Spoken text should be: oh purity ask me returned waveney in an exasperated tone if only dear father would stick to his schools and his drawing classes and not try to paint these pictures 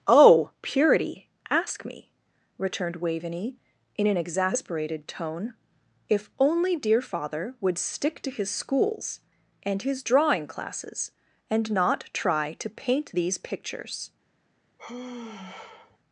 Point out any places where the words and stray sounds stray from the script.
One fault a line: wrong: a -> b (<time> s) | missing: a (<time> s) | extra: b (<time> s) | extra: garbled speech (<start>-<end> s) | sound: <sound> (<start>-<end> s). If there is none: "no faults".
sound: sigh (14.8-16.0 s)